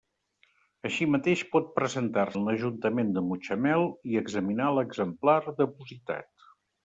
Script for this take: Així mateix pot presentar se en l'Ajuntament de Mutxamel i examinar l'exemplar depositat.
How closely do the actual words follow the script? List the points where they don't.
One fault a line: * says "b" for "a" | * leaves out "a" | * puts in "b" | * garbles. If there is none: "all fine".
* leaves out "se"